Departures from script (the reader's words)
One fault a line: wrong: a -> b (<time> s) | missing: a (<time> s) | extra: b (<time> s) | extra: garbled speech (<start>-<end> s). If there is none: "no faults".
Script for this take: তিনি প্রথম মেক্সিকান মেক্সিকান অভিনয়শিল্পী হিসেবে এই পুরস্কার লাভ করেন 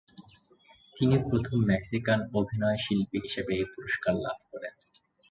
missing: মেক্সিকান (2.2 s)